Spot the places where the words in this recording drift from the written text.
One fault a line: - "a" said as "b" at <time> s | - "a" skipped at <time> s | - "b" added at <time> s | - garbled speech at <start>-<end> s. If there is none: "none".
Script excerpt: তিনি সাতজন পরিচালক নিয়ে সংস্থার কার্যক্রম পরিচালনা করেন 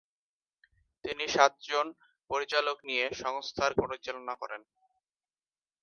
- "কার্যক্রম" skipped at 3.7 s